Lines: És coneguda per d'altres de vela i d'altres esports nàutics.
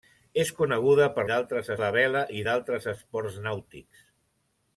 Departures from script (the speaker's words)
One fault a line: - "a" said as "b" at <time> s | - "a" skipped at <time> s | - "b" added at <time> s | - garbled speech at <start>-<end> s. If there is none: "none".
none